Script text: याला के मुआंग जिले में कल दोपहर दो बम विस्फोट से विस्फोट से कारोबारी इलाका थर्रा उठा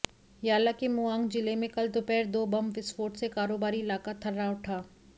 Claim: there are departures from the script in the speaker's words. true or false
true